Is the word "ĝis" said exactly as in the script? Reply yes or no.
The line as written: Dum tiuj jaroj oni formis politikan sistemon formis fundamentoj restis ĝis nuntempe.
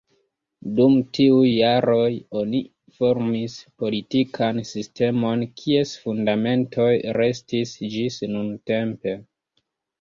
yes